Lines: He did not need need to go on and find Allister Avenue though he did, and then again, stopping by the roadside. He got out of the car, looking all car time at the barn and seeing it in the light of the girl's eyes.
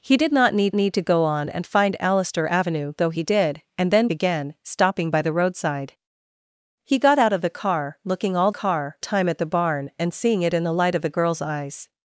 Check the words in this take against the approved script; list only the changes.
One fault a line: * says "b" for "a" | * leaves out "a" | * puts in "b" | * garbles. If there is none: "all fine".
all fine